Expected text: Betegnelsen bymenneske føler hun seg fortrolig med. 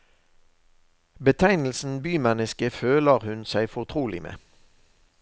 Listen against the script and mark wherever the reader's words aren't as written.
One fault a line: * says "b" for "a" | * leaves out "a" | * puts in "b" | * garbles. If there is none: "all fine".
all fine